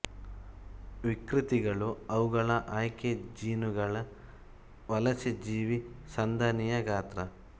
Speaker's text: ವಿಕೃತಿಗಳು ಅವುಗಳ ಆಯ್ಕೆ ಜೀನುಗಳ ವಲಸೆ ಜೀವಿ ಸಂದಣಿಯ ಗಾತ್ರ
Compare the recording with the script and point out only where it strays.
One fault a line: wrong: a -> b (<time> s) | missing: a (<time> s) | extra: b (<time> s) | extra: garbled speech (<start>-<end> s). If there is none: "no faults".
no faults